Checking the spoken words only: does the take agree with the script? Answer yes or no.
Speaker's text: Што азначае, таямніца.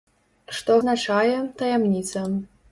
yes